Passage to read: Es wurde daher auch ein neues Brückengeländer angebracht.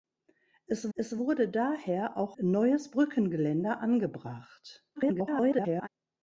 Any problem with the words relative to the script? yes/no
yes